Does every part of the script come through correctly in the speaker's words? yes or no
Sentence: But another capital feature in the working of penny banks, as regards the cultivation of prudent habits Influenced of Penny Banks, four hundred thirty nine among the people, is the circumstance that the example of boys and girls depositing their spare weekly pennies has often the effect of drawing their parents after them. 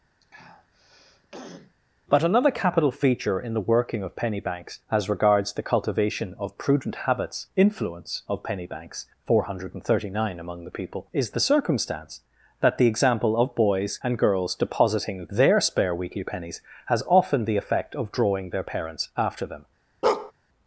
no